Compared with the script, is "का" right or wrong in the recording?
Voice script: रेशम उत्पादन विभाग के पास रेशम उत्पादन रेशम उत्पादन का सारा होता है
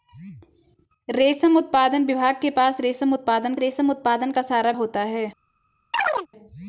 right